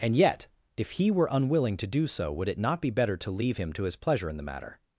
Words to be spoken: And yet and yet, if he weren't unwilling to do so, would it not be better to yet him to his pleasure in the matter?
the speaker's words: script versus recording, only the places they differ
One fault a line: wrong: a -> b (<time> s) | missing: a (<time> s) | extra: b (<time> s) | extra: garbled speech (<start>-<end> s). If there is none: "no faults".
missing: and yet (0.5 s)
wrong: weren't -> were (1.1 s)
wrong: yet -> leave (3.3 s)